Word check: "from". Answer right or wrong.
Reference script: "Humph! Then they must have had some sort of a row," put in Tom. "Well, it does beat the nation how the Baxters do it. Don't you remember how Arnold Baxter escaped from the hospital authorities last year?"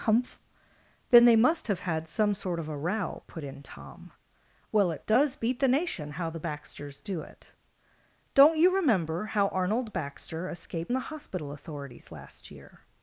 wrong